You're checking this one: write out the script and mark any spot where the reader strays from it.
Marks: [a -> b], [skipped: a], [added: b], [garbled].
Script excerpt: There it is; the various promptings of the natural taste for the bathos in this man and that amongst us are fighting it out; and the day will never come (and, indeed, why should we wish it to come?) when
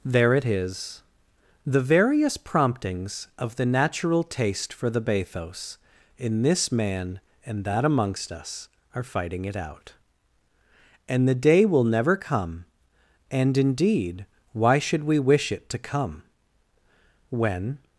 There it is; the various promptings of the natural taste for the bathos in this man and that amongst us are fighting it out; and the day will never come (and, indeed, why should we wish it to come?) when